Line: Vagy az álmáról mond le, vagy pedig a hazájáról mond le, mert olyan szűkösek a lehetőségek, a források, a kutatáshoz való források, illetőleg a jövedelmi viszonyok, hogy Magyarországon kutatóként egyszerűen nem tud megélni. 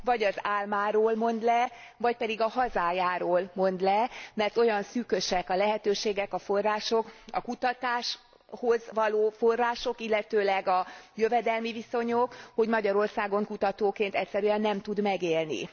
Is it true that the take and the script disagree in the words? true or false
false